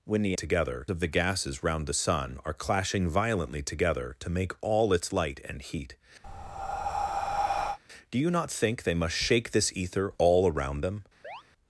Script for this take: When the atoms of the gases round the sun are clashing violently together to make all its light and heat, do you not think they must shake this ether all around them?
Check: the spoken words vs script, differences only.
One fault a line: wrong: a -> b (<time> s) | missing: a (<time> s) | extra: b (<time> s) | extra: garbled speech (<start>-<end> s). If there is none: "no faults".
wrong: atoms -> together (0.3 s)